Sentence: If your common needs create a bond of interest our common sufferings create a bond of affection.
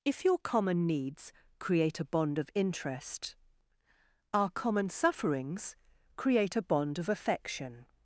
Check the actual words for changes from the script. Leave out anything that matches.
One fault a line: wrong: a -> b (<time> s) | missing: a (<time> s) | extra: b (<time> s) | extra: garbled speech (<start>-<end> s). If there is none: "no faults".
no faults